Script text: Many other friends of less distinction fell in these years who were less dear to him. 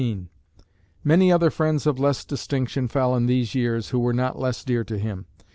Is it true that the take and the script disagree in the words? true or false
true